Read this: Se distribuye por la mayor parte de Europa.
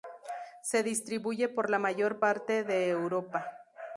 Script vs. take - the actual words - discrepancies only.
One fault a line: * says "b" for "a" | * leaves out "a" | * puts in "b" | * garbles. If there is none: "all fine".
all fine